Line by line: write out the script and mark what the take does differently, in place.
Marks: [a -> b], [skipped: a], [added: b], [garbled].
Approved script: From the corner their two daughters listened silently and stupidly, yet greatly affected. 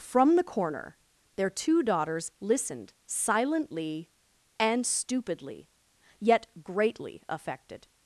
From the corner their two daughters listened silently and stupidly, yet greatly affected.